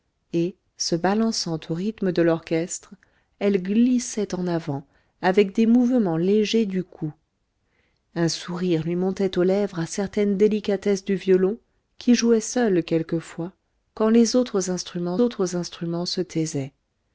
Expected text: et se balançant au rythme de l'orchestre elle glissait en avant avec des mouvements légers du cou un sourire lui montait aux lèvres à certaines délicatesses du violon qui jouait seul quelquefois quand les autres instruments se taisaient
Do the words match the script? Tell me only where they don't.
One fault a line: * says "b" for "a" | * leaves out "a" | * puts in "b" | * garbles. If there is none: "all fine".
* puts in "autres instruments"